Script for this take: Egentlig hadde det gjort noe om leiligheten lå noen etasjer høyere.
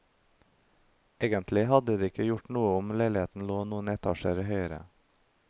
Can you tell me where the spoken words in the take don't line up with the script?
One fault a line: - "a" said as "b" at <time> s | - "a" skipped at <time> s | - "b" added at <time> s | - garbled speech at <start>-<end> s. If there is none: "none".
- "ikke" added at 2.1 s